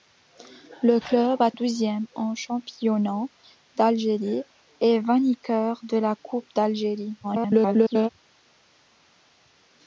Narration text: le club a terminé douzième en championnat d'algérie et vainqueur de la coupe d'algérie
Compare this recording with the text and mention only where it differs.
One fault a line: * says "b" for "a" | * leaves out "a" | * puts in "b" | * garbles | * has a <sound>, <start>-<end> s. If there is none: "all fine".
* leaves out "terminé"
* garbles